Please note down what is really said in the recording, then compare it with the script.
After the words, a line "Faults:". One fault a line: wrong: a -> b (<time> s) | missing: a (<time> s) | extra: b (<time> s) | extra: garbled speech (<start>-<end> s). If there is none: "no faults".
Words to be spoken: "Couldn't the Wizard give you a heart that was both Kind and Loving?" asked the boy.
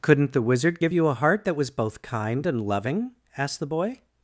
"Couldn't the Wizard give you a heart that was both Kind and Loving?" asked the boy.
Faults:
no faults